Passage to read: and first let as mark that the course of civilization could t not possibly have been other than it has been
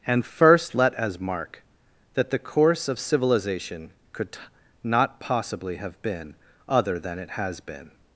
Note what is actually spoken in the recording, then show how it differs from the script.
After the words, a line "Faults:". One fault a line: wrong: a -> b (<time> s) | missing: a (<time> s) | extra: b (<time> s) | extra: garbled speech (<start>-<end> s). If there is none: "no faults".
and first let as mark that the course of civilization could t not possibly have been other than it has been
Faults:
no faults